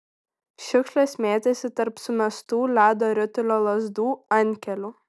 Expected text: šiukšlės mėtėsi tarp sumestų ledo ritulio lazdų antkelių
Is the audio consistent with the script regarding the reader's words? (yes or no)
yes